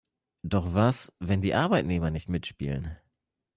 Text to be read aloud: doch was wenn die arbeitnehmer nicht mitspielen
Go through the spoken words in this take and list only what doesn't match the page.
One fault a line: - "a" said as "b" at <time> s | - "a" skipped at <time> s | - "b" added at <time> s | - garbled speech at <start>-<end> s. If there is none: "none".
none